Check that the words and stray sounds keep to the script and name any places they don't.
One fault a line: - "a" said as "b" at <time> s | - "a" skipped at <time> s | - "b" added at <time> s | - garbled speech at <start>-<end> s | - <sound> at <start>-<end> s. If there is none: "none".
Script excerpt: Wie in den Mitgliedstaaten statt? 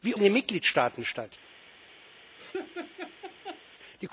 - laugh at 2.4-3.6 s